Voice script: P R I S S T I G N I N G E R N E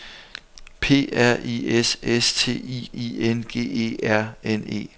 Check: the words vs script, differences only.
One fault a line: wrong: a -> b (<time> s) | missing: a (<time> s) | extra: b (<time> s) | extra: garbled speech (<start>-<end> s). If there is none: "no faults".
missing: G N (2.9 s)